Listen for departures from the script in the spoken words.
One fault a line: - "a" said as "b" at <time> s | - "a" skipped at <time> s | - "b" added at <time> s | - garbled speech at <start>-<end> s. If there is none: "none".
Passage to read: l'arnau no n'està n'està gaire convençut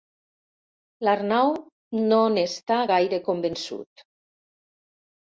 - "n'està" skipped at 2.8 s